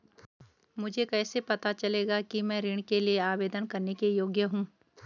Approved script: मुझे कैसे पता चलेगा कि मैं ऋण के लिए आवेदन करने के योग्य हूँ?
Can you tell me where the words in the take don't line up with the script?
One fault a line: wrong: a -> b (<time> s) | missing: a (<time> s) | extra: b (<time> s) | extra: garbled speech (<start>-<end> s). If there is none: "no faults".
no faults